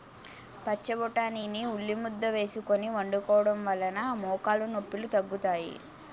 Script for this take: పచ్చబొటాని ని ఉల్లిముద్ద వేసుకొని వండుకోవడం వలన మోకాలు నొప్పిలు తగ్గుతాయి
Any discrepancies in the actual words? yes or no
no